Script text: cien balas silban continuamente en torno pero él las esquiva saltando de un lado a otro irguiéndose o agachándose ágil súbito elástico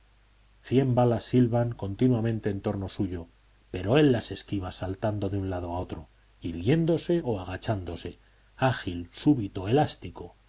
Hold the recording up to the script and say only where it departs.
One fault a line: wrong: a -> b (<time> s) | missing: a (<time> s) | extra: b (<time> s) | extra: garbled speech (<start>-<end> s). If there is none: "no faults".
extra: suyo (2.9 s)